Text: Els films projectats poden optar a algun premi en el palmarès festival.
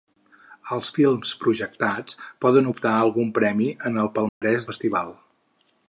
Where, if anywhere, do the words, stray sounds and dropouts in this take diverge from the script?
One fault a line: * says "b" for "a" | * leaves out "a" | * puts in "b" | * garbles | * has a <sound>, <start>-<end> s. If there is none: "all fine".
* has a dropout, 4.3-4.4 s